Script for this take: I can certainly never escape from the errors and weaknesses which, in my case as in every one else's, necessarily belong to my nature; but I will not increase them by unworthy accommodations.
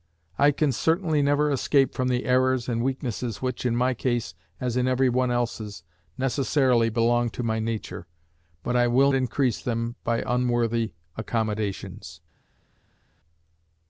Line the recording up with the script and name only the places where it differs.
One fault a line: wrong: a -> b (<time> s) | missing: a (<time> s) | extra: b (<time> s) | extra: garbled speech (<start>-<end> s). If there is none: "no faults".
missing: not (9.1 s)